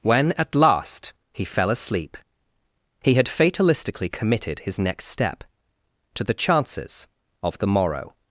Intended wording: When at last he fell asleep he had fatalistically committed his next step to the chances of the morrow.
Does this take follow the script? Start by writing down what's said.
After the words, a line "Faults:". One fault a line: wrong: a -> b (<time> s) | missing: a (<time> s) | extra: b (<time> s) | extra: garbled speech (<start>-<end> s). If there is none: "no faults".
When at last he fell asleep he had fatalistically committed his next step to the chances of the morrow.
Faults:
no faults